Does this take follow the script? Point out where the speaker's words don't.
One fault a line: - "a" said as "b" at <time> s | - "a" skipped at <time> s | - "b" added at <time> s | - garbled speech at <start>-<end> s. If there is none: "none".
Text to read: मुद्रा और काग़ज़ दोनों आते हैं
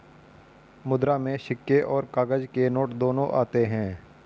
- "में सिक्के" added at 1.2 s
- "के नोट" added at 2.4 s